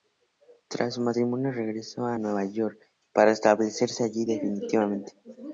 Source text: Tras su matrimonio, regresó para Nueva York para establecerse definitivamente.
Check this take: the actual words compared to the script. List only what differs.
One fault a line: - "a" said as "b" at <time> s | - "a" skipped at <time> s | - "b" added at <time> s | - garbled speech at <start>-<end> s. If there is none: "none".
- "para" said as "a" at 2.1 s
- "allí" added at 4.0 s